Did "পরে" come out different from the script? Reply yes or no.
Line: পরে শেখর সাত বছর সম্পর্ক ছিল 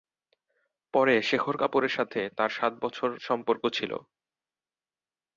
no